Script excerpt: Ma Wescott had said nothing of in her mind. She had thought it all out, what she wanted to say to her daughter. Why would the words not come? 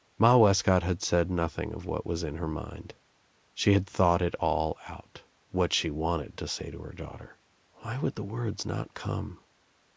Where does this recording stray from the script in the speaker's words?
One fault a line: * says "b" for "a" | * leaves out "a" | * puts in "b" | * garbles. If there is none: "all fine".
* puts in "what was"